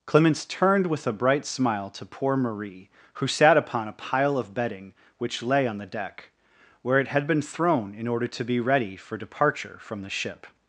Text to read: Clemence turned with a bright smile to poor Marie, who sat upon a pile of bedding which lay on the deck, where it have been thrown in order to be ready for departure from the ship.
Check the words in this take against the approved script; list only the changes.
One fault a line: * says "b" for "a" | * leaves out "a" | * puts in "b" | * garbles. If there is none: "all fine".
* says "had" for "have"